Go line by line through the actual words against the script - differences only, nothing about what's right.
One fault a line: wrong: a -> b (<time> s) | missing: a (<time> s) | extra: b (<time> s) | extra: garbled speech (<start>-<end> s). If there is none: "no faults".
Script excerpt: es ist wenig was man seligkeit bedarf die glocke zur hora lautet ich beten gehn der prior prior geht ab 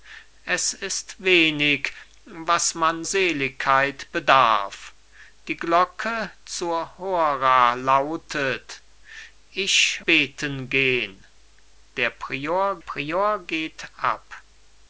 no faults